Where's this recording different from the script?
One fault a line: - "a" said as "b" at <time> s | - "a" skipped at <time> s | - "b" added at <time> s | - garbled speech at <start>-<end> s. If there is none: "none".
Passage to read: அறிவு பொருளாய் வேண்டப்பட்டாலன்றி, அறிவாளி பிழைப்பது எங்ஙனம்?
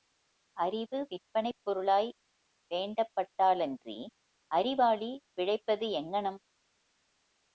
- "விற்பனைப்" added at 1.1 s